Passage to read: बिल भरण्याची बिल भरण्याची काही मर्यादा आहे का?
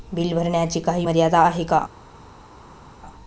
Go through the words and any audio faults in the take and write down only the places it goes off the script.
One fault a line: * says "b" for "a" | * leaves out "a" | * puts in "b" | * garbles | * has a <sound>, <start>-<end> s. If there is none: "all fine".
* leaves out "बिल भरण्याची"